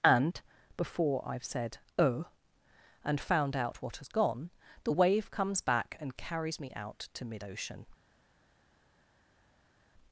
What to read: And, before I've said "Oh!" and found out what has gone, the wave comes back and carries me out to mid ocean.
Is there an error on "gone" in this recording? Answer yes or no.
no